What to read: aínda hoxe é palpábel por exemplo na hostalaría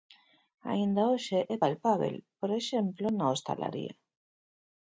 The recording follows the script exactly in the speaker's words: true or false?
true